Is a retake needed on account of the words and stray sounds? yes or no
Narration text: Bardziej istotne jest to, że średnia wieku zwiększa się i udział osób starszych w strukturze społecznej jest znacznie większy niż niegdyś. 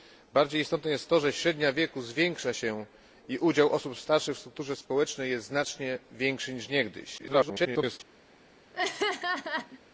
yes